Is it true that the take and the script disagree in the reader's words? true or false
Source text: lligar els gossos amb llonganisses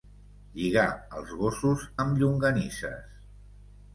false